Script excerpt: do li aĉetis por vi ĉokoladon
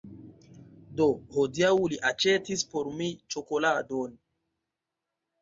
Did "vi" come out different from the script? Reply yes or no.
yes